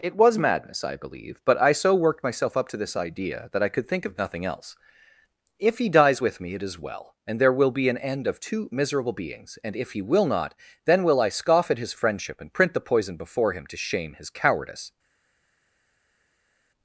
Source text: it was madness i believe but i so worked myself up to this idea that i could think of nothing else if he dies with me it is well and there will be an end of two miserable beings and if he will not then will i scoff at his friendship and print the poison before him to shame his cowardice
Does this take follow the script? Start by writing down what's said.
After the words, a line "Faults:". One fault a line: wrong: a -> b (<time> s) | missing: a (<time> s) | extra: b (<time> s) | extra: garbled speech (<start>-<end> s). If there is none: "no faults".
it was madness i believe but i so worked myself up to this idea that i could think of nothing else if he dies with me it is well and there will be an end of two miserable beings and if he will not then will i scoff at his friendship and print the poison before him to shame his cowardice
Faults:
no faults